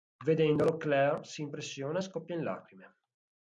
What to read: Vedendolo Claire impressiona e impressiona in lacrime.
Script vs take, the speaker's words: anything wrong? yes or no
yes